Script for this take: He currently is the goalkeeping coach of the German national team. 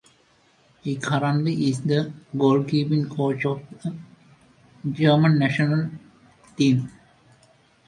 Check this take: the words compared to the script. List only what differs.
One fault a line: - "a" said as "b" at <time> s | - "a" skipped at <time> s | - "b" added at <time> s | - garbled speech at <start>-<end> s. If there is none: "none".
none